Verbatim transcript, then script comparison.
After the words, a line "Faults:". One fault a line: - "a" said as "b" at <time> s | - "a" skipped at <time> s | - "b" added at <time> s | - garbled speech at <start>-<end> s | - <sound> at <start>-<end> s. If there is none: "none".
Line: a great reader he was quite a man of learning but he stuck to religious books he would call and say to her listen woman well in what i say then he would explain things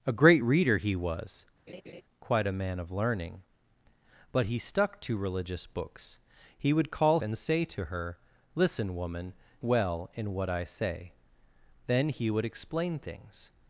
a great reader he was quite a man of learning but he stuck to religious books he would call and say to her listen woman well in what i say then he would explain things
Faults:
- laugh at 1.7-2.0 s